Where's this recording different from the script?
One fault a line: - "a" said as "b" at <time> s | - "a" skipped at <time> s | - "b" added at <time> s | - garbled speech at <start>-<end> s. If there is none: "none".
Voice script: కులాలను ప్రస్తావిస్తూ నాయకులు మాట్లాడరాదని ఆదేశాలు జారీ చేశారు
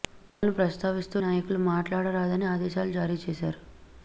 none